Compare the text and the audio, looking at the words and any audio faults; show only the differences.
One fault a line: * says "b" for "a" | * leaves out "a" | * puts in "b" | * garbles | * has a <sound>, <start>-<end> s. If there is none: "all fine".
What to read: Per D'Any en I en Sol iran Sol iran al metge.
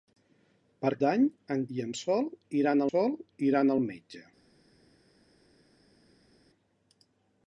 all fine